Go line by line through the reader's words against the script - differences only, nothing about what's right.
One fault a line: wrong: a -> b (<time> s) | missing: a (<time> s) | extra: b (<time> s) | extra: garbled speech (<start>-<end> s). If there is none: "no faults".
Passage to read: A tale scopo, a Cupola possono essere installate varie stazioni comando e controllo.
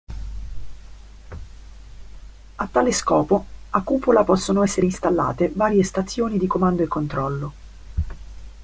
extra: di (6.4 s)